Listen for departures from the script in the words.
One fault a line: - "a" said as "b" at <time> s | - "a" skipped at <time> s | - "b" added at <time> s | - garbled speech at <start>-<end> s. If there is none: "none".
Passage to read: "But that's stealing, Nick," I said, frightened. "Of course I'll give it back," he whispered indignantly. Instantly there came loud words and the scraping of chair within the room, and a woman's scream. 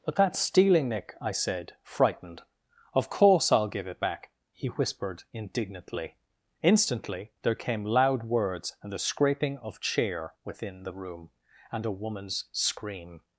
none